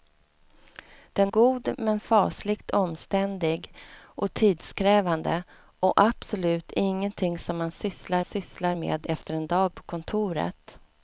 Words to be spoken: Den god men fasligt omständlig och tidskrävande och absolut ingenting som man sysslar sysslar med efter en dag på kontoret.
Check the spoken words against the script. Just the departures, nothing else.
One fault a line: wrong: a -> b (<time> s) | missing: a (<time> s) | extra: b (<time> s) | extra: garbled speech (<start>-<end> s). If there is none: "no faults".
no faults